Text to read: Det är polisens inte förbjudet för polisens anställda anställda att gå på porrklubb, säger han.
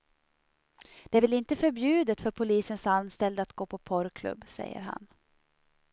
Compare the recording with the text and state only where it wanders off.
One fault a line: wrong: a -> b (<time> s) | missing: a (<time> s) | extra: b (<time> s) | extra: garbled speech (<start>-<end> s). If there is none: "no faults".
wrong: polisens -> väl (1.2 s)
missing: anställda (3.4 s)